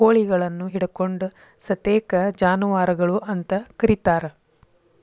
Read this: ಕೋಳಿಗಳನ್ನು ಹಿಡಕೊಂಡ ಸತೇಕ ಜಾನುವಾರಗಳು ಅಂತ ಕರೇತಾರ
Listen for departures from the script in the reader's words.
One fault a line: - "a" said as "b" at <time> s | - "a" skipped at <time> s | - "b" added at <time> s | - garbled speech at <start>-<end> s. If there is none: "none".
none